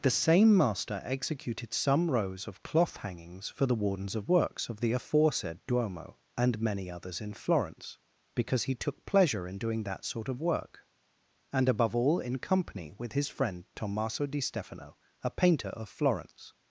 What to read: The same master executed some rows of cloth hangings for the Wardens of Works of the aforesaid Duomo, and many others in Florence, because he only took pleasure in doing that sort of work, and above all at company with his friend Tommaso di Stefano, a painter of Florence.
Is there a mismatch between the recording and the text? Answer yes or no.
yes